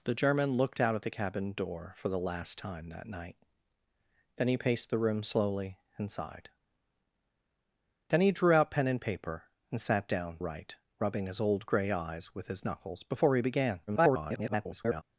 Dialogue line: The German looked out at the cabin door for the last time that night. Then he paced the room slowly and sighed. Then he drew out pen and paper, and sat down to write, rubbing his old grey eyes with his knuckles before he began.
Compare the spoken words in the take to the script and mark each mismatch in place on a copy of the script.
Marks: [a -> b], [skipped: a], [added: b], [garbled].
The German looked out at the cabin door for the last time that night. Then he paced the room slowly and sighed. Then he drew out pen and paper, and sat down [skipped: to] write, rubbing his old grey eyes with his knuckles before he began. [garbled]